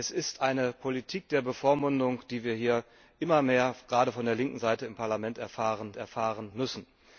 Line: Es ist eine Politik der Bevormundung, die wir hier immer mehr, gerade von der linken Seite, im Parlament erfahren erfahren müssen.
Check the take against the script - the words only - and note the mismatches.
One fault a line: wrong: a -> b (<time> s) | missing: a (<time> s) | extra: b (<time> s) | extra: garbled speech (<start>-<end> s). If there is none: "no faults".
no faults